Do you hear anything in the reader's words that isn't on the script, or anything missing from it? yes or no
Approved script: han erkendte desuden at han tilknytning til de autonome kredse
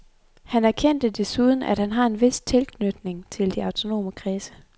yes